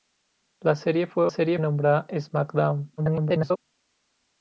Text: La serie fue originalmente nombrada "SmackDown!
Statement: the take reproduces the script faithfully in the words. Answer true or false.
false